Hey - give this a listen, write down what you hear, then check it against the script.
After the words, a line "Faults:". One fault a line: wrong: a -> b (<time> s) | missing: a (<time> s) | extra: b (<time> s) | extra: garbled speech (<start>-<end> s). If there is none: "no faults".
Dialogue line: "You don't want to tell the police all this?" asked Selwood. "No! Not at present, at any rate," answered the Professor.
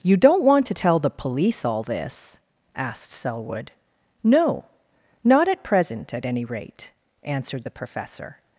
"You don't want to tell the police all this?" asked Selwood. "No! Not at present, at any rate," answered the Professor.
Faults:
no faults